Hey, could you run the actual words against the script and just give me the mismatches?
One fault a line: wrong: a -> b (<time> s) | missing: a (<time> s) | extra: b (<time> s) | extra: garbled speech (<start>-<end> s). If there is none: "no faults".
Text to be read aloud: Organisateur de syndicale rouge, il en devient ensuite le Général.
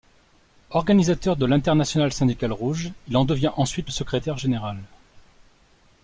extra: l'Internationale (1.4 s)
extra: Secrétaire (3.9 s)